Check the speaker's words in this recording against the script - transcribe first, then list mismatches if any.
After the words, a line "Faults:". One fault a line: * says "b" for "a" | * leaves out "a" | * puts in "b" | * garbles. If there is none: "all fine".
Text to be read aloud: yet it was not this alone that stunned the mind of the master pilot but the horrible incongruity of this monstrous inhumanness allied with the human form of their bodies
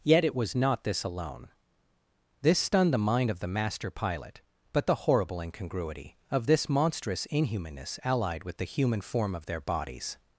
yet it was not this alone this stunned the mind of the master pilot but the horrible incongruity of this monstrous inhumanness allied with the human form of their bodies
Faults:
* says "this" for "that"